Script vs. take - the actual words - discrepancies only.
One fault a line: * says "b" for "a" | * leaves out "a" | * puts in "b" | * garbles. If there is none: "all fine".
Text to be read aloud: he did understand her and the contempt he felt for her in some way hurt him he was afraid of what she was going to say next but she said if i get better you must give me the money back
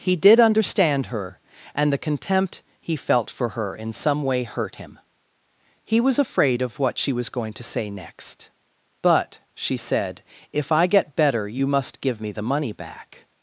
all fine